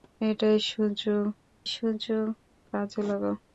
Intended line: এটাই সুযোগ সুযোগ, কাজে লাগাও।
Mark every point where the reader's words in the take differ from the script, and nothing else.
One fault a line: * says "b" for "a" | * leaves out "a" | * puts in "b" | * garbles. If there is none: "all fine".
all fine